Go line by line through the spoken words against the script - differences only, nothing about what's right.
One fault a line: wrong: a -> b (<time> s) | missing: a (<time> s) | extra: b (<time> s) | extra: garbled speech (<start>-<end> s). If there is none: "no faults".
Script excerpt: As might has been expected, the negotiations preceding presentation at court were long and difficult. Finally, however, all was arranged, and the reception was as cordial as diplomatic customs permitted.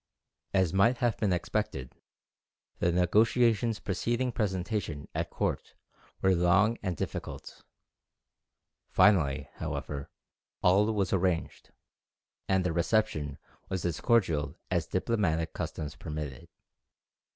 wrong: has -> have (1.0 s)